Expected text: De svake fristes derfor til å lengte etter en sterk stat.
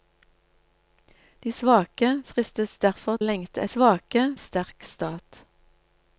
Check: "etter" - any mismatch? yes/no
yes